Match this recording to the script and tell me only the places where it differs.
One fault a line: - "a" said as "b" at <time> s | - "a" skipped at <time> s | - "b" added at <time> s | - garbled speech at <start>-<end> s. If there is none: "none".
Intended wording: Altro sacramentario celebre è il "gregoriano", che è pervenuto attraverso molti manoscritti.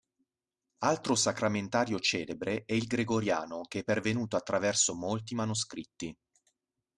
none